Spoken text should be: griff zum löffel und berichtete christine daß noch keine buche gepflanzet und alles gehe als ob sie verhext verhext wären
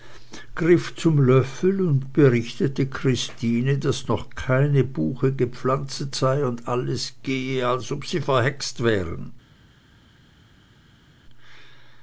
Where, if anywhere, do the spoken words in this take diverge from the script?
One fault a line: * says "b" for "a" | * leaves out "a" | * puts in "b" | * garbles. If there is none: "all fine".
* puts in "sei"
* leaves out "verhext"